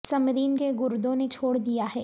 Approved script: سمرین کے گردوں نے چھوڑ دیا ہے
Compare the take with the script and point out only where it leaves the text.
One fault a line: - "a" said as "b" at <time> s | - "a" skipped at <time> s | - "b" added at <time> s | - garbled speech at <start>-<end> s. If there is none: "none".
none